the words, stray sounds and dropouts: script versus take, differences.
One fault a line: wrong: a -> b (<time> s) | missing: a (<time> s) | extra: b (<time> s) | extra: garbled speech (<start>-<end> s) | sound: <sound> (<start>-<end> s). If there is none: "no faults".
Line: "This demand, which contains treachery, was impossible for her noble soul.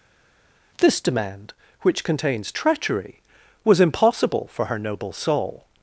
no faults